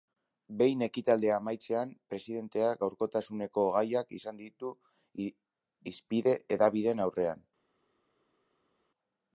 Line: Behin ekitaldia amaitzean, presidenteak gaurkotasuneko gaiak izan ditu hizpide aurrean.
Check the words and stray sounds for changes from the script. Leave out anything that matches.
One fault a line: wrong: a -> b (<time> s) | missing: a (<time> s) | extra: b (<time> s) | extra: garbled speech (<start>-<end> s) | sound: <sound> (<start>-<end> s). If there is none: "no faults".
extra: hedabideen (6.6 s)